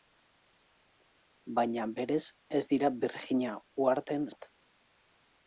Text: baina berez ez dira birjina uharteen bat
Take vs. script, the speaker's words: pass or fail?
pass